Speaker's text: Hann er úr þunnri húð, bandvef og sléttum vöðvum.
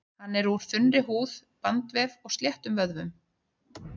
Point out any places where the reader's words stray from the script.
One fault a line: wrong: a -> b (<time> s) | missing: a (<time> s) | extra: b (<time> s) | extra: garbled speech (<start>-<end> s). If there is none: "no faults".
no faults